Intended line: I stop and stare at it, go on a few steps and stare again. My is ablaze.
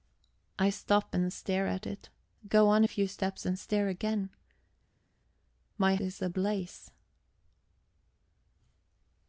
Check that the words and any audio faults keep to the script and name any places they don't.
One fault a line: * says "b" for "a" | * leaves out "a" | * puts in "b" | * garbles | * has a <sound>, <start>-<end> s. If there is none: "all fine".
all fine